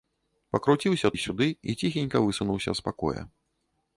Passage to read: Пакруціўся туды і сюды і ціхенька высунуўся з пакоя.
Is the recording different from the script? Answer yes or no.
yes